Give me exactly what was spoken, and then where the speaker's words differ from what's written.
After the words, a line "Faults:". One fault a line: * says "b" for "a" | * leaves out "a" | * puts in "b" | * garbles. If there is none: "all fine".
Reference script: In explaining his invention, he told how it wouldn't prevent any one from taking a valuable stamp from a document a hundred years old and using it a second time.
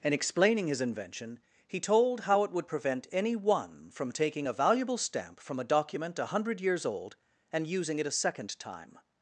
In explaining his invention, he told how it would prevent any one from taking a valuable stamp from a document a hundred years old and using it a second time.
Faults:
* says "would" for "wouldn't"